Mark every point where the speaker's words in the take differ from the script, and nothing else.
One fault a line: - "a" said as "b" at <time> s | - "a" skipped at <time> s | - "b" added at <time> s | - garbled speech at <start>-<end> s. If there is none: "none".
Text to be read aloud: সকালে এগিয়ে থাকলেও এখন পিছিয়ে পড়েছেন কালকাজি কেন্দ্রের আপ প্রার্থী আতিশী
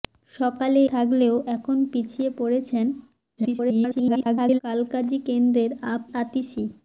- "এগিয়ে" skipped at 0.8 s
- garbled speech at 3.4-4.6 s
- "প্রার্থী" skipped at 6.0 s